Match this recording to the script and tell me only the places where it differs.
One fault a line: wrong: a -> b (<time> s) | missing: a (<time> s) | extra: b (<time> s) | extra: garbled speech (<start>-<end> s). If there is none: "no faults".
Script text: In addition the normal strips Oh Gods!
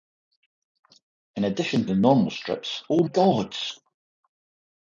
no faults